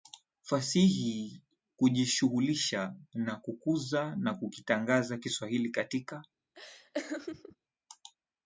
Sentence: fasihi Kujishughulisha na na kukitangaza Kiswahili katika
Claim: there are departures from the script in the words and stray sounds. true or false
true